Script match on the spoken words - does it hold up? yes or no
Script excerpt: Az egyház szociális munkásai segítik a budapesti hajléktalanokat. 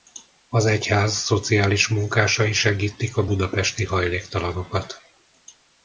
yes